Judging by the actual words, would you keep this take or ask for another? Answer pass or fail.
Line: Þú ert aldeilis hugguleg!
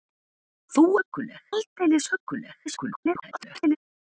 fail